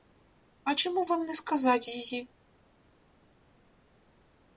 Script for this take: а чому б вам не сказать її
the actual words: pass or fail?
pass